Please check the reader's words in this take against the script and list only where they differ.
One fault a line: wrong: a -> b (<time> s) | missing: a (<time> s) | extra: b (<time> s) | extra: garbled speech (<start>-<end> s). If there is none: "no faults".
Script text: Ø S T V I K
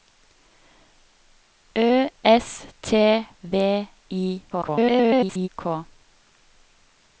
extra: garbled speech (4.5-5.5 s)